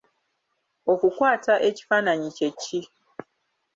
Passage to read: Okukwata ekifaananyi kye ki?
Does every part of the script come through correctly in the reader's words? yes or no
yes